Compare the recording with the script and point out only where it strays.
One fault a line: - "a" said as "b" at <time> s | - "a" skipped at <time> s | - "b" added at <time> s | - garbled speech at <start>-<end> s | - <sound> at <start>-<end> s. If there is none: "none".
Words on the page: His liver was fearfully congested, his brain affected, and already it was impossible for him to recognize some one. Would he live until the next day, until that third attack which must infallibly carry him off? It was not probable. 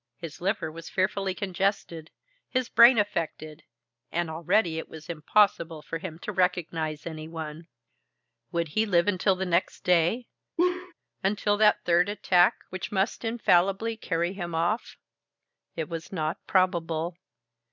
- "some" said as "any" at 7.0 s
- laugh at 10.6-10.9 s